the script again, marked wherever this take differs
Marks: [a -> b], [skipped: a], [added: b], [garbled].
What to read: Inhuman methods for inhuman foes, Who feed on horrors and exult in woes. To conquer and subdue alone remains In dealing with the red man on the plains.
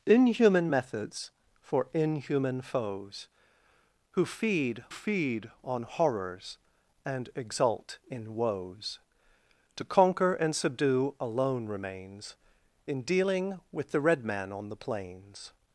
Inhuman methods for inhuman foes, Who feed [added: feed] on horrors and exult in woes. To conquer and subdue alone remains In dealing with the red man on the plains.